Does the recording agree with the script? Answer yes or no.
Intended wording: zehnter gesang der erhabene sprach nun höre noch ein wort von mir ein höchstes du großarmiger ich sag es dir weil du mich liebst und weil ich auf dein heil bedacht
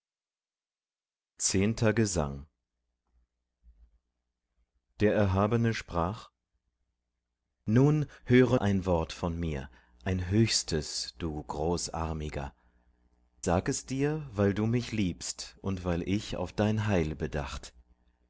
no